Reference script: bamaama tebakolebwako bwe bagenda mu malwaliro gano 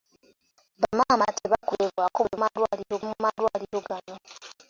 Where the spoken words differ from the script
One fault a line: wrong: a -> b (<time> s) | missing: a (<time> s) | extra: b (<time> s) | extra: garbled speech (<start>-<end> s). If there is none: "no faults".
wrong: bagenda -> malwaliro (2.4 s)